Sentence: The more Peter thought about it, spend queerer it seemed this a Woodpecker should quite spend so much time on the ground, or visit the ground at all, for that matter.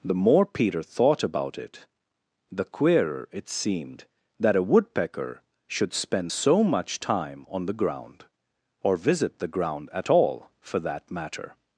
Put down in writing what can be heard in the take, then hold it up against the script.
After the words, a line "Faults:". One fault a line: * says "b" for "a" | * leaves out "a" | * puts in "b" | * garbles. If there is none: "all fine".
The more Peter thought about it, the queerer it seemed that a Woodpecker should spend so much time on the ground, or visit the ground at all, for that matter.
Faults:
* says "the" for "spend"
* says "that" for "this"
* leaves out "quite"